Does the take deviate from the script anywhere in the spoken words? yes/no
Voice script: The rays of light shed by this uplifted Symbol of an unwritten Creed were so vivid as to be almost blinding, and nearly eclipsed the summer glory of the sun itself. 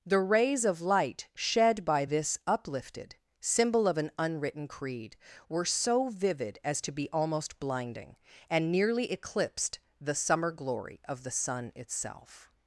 no